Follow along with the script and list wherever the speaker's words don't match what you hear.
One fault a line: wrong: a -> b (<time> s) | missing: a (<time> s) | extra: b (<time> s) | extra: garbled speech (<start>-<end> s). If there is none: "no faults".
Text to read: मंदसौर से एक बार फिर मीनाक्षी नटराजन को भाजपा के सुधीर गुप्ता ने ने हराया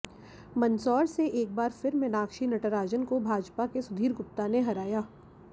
missing: ने (4.6 s)